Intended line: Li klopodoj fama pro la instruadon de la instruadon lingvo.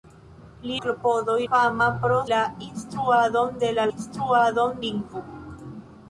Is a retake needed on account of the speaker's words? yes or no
no